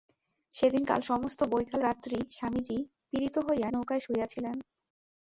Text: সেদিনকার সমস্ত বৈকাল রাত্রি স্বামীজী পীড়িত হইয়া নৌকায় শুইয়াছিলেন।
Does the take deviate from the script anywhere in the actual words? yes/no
no